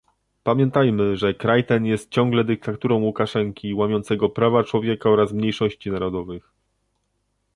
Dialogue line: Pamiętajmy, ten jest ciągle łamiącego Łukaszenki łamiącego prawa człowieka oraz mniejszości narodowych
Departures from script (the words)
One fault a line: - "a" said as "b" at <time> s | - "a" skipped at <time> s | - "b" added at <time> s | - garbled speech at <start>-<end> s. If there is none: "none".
- "że kraj" added at 1.1 s
- "łamiącego" said as "dyktaturą" at 2.4 s